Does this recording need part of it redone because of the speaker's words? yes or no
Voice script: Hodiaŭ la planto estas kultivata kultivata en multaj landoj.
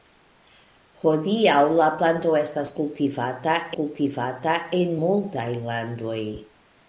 no